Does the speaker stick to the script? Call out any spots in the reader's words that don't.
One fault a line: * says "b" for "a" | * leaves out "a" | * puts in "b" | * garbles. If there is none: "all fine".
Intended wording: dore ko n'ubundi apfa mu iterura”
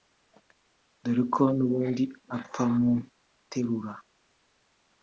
all fine